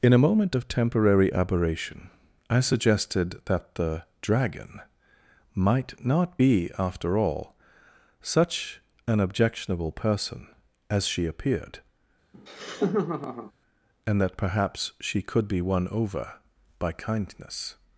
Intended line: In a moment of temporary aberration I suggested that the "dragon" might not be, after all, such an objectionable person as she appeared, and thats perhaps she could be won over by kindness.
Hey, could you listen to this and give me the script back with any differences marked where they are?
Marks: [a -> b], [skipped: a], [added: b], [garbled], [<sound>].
In a moment of temporary aberration I suggested that the "dragon" might not be, after all, such an objectionable person as she appeared, [laugh] and [thats -> that] perhaps she could be won over by kindness.